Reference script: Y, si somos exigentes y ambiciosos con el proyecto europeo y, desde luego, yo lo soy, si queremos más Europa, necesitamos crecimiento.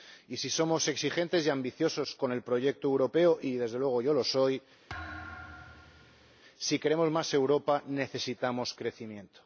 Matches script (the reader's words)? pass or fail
pass